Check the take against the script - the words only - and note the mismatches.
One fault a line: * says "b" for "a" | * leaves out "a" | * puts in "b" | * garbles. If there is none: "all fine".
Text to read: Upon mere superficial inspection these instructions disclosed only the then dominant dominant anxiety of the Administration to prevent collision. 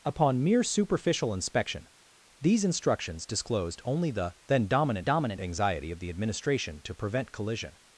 all fine